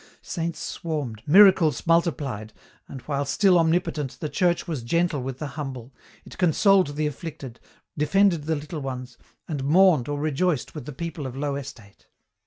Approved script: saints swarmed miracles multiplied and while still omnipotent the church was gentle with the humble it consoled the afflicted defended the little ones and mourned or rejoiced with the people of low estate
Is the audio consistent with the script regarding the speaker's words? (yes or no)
yes